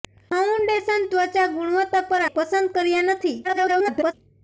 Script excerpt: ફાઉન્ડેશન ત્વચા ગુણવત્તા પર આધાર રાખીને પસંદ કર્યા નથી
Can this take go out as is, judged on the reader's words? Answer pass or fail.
fail